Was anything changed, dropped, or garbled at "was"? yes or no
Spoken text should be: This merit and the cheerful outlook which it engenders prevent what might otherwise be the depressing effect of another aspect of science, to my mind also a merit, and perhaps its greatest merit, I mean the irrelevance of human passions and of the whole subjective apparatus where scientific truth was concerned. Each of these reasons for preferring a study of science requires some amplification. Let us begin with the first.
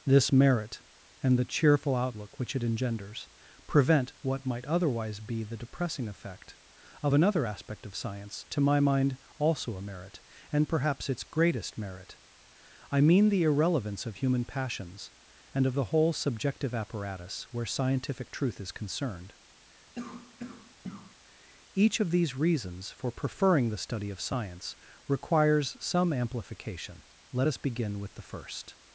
yes